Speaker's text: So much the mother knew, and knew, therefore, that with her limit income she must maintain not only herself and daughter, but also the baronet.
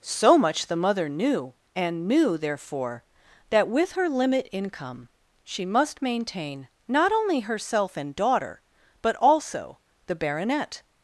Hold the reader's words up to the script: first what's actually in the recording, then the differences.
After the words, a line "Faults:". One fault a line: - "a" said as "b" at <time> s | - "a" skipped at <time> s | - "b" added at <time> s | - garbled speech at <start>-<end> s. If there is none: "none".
So much the mother knew, and knew, therefore, that with her limit income she must maintain not only herself and daughter, but also the baronet.
Faults:
none